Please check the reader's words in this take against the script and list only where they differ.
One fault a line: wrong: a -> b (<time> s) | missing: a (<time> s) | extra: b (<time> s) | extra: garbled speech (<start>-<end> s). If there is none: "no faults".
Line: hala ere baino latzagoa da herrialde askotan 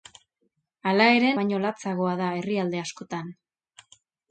no faults